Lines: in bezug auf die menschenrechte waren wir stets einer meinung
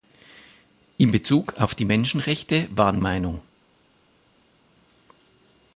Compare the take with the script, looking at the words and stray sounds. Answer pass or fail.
fail